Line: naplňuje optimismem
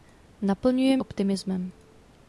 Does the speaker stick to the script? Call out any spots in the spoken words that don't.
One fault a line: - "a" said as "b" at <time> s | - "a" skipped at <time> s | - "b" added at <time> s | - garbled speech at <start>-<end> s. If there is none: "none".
none